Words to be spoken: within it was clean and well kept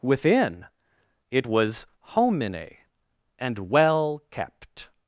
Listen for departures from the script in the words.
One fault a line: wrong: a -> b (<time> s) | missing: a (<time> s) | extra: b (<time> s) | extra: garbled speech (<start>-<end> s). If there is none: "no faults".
wrong: clean -> homine (2.0 s)